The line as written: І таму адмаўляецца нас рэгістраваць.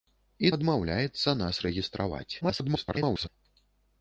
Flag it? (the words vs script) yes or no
yes